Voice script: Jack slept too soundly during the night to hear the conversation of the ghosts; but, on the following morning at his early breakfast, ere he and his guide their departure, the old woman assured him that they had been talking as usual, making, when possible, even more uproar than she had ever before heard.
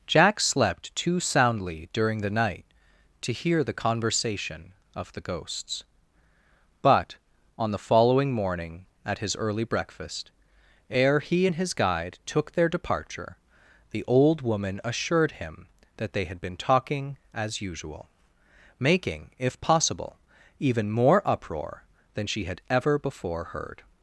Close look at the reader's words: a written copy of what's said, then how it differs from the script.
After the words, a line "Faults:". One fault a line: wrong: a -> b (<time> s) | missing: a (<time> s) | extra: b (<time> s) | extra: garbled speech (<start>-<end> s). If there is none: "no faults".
Jack slept too soundly during the night to hear the conversation of the ghosts; but, on the following morning at his early breakfast, ere he and his guide took their departure, the old woman assured him that they had been talking as usual, making, if possible, even more uproar than she had ever before heard.
Faults:
extra: took (12.2 s)
wrong: when -> if (19.4 s)